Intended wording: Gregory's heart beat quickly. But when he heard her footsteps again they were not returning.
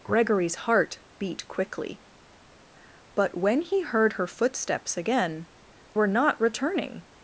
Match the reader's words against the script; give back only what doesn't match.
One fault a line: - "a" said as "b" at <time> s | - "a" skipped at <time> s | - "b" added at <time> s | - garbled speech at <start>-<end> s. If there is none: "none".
- "they" skipped at 5.5 s